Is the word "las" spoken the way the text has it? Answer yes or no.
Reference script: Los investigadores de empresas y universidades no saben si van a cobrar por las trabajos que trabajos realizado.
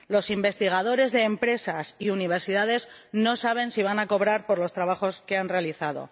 no